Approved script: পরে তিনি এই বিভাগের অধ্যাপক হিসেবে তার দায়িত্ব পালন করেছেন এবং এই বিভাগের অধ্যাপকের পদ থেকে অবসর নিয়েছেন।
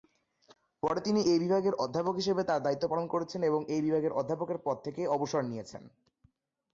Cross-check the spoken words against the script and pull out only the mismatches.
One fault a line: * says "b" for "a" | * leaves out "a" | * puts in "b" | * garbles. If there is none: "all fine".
all fine